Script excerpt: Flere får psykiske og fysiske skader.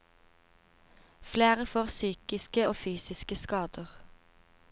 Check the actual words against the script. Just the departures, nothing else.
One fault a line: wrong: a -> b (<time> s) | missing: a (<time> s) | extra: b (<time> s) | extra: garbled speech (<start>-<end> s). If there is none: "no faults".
no faults